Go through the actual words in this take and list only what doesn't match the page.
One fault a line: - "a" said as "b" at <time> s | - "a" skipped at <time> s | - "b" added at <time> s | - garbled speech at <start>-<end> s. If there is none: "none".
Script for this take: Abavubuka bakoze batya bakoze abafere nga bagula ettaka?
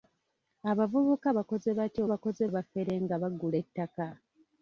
none